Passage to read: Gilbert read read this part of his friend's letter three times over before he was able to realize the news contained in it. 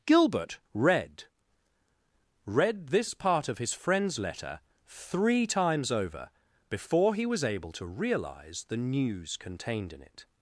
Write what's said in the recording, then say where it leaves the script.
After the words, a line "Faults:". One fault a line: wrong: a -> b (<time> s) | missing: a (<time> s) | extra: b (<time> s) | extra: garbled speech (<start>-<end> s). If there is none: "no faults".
Gilbert read read this part of his friend's letter three times over before he was able to realize the news contained in it.
Faults:
no faults